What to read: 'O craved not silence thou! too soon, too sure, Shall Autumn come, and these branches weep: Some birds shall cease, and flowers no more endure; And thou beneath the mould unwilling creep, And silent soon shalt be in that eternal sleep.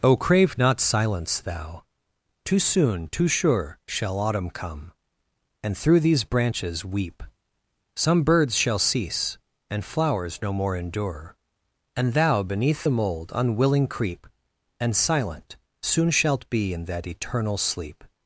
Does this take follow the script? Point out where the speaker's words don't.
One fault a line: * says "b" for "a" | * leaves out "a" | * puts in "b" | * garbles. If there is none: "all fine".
* says "crave" for "craved"
* puts in "through"